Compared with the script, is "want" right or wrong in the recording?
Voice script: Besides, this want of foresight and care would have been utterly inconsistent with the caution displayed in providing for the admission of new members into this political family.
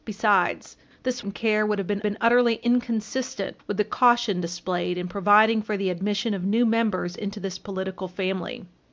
wrong